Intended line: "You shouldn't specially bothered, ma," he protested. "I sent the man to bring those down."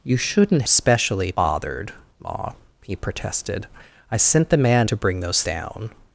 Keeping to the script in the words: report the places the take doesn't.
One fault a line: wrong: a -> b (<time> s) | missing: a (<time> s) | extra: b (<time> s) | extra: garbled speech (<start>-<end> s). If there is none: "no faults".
no faults